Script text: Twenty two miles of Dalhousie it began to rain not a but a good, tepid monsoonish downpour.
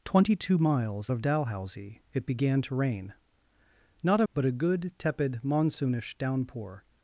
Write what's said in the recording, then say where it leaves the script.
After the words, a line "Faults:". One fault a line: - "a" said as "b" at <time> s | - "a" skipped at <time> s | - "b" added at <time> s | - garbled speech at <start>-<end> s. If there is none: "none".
Twenty two miles of Dalhousie it began to rain not a but a good, tepid monsoonish downpour.
Faults:
none